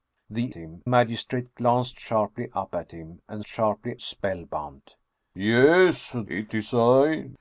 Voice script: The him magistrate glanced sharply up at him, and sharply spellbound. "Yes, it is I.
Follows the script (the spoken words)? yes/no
yes